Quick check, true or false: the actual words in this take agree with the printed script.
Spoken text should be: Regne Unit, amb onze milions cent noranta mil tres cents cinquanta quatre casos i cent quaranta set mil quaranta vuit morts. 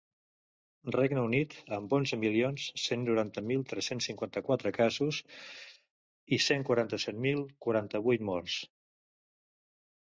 true